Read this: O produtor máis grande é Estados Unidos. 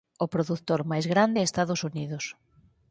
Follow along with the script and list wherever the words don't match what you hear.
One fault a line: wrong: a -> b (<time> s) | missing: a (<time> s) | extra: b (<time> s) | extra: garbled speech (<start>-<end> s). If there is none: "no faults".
no faults